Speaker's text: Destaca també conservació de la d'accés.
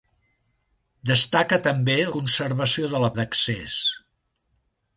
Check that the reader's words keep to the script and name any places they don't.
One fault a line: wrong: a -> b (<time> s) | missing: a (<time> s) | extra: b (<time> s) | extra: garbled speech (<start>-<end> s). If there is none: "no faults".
no faults